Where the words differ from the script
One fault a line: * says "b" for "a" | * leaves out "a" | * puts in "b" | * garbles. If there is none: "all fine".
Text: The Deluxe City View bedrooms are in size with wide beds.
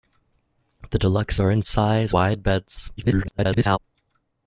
* leaves out "City View bedrooms"
* leaves out "with"
* garbles